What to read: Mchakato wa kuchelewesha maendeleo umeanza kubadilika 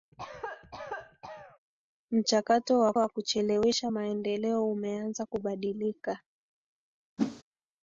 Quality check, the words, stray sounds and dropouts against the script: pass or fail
fail